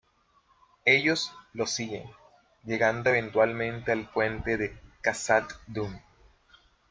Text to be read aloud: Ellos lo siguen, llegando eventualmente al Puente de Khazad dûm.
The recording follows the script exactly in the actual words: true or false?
true